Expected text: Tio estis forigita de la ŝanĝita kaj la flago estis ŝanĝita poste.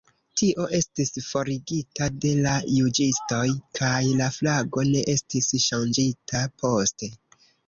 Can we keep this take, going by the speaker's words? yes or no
no